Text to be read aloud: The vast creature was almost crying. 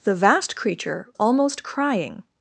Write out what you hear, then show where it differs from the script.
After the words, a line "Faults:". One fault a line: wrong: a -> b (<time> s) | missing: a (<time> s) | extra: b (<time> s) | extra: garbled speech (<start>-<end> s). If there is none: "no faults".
The vast creature almost crying.
Faults:
missing: was (1.1 s)